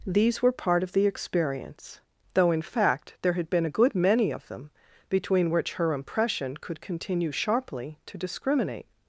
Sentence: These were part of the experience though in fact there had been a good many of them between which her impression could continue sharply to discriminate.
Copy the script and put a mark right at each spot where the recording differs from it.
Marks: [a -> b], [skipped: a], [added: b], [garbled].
These were part of the experience though in fact there had been a good many of them between which her impression could continue sharply to discriminate.